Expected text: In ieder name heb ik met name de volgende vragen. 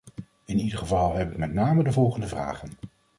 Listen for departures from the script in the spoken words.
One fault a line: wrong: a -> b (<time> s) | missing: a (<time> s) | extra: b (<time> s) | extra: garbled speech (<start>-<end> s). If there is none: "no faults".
wrong: name -> geval (0.8 s)